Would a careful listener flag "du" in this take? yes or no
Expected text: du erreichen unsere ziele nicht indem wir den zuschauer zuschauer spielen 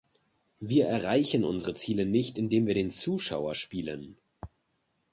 yes